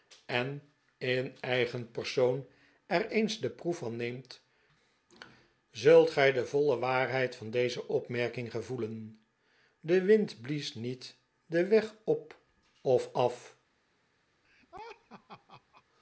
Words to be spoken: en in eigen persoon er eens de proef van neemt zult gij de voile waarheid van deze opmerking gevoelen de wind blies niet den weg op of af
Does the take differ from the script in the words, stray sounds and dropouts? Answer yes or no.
yes